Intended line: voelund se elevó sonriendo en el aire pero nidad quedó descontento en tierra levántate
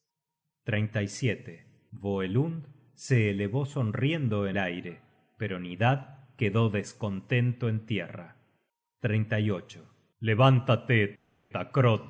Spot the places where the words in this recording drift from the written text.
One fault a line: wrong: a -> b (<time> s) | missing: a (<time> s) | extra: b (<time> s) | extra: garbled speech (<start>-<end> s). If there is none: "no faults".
missing: el (4.6 s)